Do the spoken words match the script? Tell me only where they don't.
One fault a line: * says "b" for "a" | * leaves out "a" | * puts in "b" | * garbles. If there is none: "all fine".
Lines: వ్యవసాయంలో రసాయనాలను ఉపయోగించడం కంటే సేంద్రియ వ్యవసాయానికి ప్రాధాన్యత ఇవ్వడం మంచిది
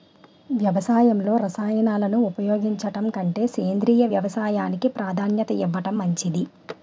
all fine